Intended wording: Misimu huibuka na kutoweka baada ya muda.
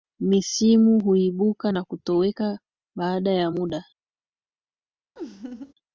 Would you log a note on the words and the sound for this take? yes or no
yes